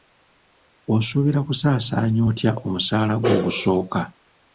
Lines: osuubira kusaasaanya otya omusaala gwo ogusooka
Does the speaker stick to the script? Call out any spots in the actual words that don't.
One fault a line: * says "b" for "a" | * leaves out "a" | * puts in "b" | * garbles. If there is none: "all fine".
all fine